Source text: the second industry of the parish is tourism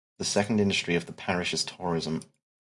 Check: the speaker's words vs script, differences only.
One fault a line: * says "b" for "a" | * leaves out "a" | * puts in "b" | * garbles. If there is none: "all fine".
all fine